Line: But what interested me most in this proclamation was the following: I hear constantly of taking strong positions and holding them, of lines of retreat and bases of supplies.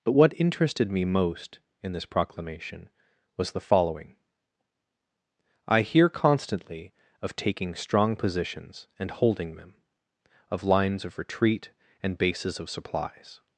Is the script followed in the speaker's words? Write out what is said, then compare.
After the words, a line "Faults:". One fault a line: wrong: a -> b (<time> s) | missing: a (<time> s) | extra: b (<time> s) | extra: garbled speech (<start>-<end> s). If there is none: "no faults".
But what interested me most in this proclamation was the following: I hear constantly of taking strong positions and holding them, of lines of retreat and bases of supplies.
Faults:
no faults